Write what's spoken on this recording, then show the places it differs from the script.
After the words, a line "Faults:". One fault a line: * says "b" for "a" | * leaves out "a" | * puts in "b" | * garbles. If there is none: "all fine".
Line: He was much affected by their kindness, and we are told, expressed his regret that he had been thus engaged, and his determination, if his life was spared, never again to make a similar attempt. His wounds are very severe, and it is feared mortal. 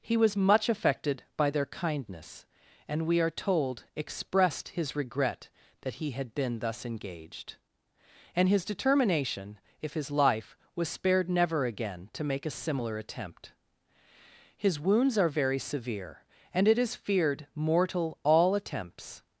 He was much affected by their kindness, and we are told, expressed his regret that he had been thus engaged, and his determination, if his life was spared, never again to make a similar attempt. His wounds are very severe, and it is feared mortal. All attempts
Faults:
* puts in "All attempts"